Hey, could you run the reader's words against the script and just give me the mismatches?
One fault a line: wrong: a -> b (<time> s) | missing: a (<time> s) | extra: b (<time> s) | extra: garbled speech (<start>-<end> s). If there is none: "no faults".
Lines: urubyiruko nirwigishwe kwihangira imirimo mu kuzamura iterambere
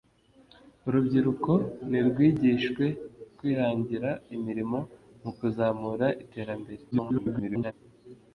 extra: garbled speech (6.9-7.7 s)